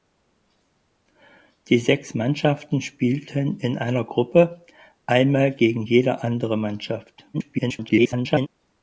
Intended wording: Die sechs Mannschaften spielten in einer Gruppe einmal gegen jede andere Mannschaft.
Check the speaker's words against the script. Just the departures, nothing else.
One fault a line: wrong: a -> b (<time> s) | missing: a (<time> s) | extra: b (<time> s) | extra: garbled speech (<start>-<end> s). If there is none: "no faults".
extra: garbled speech (7.3-8.5 s)